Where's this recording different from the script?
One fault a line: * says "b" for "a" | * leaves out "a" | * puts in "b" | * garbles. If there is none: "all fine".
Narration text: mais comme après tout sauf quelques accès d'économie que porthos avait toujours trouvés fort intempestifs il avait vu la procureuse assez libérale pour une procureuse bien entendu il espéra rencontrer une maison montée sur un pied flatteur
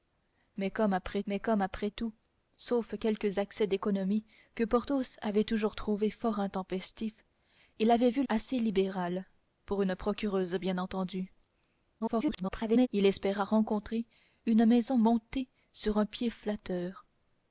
* puts in "mais comme après"
* leaves out "la procureuse"
* garbles